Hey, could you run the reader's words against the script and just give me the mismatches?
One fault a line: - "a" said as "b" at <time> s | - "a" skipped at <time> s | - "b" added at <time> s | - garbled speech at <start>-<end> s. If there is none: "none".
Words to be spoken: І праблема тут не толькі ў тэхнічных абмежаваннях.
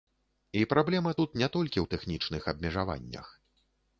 none